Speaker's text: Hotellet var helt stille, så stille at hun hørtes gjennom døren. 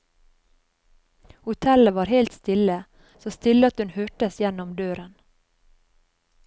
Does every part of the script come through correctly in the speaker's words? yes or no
yes